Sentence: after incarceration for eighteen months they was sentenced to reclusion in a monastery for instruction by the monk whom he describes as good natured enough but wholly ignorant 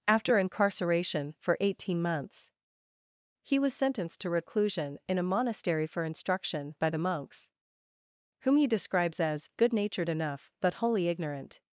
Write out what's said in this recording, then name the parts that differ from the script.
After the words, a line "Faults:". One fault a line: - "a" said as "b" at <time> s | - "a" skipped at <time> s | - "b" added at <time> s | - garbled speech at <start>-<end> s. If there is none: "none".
after incarceration for eighteen months he was sentenced to reclusion in a monastery for instruction by the monks whom he describes as good natured enough but wholly ignorant
Faults:
- "they" said as "he" at 3.4 s
- "monk" said as "monks" at 7.0 s